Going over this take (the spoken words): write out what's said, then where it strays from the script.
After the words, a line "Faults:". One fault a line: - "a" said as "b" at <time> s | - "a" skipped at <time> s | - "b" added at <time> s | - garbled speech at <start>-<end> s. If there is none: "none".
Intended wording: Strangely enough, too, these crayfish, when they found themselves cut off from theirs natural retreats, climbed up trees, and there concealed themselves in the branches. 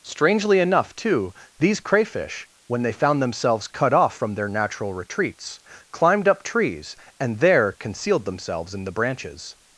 Strangely enough, too, these crayfish, when they found themselves cut off from their natural retreats, climbed up trees, and there concealed themselves in the branches.
Faults:
- "theirs" said as "their" at 4.3 s